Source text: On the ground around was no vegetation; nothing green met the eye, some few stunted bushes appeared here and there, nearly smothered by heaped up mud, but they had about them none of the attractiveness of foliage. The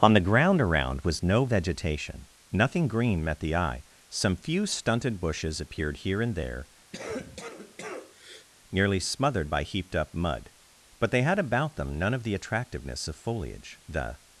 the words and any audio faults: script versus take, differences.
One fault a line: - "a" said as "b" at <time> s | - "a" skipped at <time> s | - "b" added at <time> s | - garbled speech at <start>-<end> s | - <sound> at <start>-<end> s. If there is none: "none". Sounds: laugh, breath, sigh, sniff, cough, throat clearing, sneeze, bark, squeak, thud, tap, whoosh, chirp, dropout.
- cough at 6.9-8.5 s